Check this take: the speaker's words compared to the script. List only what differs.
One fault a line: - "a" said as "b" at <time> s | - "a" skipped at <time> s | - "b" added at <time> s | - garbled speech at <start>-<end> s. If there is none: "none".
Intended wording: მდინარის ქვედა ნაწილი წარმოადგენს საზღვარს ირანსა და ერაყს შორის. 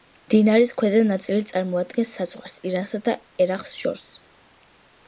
none